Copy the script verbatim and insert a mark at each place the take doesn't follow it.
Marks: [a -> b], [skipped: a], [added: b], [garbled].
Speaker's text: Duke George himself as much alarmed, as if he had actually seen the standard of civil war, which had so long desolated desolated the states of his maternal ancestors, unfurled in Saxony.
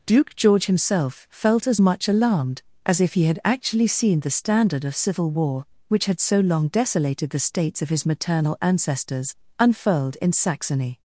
Duke George himself [added: felt] as much alarmed, as if he had actually seen the standard of civil war, which had so long desolated [skipped: desolated] the states of his maternal ancestors, unfurled in Saxony.